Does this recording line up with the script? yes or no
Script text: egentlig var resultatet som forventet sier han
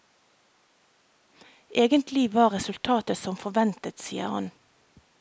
yes